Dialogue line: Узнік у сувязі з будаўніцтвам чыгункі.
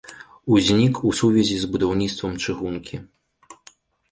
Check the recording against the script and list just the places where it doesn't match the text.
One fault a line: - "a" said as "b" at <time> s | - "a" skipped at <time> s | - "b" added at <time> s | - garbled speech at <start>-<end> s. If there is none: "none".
none